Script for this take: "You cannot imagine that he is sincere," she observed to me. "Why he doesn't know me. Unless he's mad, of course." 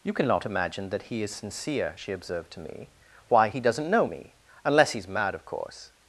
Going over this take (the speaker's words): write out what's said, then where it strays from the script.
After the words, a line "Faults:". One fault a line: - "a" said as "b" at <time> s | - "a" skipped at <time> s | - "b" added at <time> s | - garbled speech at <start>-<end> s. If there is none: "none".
"You cannot imagine that he is sincere," she observed to me. "Why he doesn't know me. Unless he's mad, of course."
Faults:
none